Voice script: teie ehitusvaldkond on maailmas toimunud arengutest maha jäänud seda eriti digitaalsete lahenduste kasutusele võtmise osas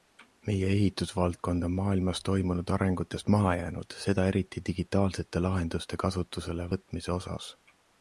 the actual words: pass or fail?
fail